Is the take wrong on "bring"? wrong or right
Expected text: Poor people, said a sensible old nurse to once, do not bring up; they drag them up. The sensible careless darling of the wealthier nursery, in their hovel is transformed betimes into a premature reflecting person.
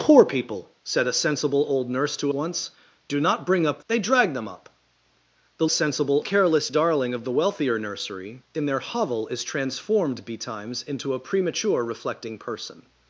right